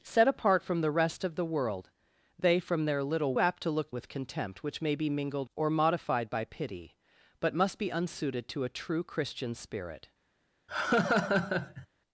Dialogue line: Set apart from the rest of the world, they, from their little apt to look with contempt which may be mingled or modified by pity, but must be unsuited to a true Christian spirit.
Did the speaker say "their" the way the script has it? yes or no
yes